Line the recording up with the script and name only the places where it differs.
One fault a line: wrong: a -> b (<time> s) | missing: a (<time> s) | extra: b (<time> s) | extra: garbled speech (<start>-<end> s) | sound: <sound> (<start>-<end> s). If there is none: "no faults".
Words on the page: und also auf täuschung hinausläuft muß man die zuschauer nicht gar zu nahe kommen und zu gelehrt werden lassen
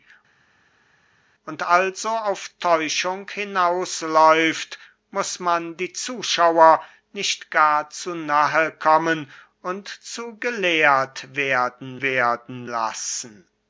extra: werden (12.0 s)